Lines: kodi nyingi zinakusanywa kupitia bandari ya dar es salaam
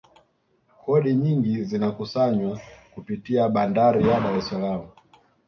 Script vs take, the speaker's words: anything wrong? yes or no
no